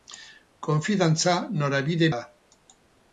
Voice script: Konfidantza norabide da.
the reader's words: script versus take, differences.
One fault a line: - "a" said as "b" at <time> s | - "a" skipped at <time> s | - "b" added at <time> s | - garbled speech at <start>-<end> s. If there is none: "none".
none